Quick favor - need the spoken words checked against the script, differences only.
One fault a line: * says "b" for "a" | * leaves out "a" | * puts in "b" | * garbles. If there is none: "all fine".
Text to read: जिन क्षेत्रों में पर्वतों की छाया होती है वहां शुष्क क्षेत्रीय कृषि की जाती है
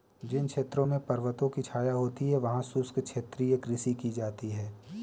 all fine